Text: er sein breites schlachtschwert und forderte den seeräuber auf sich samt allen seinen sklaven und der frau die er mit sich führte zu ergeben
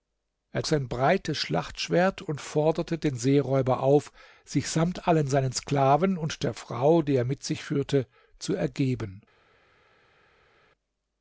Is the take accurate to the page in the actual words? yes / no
yes